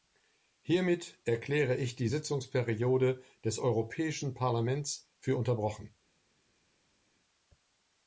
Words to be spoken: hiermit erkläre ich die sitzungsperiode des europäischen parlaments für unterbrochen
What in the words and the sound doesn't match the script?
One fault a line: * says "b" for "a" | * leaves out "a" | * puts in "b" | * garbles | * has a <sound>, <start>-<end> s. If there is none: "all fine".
all fine